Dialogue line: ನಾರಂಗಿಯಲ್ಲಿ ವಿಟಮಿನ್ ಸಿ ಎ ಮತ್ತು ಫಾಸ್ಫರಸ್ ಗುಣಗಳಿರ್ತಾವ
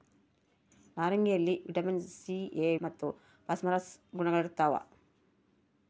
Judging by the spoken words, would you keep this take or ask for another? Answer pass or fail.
pass